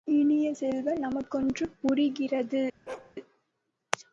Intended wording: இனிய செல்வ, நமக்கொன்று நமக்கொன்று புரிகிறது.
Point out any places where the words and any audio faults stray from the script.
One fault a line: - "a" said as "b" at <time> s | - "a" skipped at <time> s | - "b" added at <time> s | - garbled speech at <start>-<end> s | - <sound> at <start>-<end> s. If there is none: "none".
- "நமக்கொன்று" skipped at 1.7 s
- bark at 2.9-3.2 s